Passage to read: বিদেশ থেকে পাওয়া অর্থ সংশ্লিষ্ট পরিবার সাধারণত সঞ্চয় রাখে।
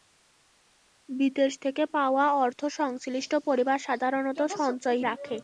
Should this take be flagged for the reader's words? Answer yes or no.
no